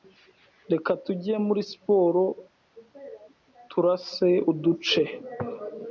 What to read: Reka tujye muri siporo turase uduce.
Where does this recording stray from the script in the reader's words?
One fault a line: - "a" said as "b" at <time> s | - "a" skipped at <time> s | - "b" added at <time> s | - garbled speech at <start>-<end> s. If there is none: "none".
none